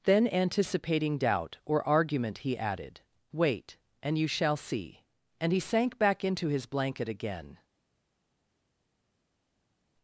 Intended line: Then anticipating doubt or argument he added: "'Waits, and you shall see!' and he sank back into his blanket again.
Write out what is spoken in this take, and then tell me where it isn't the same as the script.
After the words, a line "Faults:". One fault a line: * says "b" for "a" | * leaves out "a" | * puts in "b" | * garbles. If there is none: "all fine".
Then anticipating doubt or argument he added: "'Wait, and you shall see!' and he sank back into his blanket again.
Faults:
* says "Wait" for "Waits"